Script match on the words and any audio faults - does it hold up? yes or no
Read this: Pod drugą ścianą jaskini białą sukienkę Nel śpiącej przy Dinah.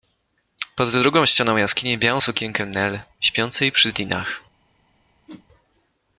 no